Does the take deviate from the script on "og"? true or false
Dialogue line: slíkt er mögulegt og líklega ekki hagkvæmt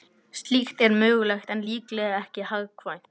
true